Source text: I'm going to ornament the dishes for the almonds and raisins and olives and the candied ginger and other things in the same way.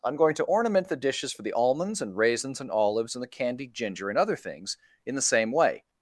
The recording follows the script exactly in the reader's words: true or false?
true